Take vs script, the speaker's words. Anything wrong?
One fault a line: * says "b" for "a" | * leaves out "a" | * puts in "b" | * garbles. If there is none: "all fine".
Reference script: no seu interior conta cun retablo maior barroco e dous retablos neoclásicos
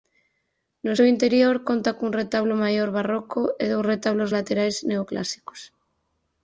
* puts in "laterais"